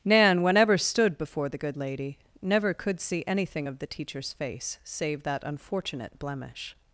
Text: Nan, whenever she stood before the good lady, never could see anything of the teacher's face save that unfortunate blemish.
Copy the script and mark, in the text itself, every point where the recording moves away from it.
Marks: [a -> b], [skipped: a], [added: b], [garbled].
Nan, whenever [skipped: she] stood before the good lady, never could see anything of the teacher's face save that unfortunate blemish.